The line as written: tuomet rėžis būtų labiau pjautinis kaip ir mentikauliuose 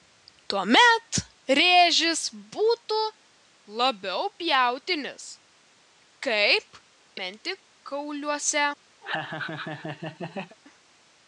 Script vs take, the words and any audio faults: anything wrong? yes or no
yes